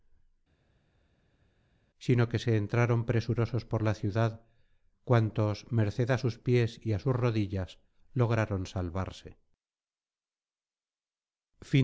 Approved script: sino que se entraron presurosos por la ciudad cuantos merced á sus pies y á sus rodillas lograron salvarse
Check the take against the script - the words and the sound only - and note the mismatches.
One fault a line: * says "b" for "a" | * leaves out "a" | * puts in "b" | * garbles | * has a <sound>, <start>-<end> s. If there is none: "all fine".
all fine